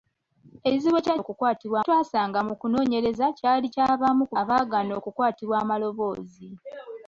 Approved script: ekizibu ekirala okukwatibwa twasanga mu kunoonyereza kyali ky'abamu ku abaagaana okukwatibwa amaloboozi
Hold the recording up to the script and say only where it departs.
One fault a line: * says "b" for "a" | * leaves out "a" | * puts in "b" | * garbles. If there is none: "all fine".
all fine